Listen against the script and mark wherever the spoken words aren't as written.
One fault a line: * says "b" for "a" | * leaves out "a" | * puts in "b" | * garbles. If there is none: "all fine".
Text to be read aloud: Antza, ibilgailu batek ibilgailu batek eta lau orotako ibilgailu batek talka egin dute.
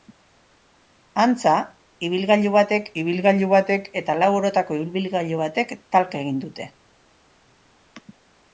all fine